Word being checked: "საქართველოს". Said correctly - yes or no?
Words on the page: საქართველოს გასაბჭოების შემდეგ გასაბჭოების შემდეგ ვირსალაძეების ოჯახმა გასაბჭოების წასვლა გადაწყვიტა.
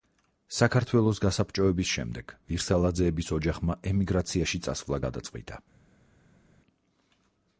yes